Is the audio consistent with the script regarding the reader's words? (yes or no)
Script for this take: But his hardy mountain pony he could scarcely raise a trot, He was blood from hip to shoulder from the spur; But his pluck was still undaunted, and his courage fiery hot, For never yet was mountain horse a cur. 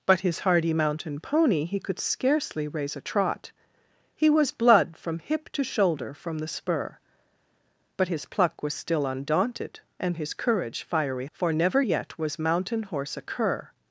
no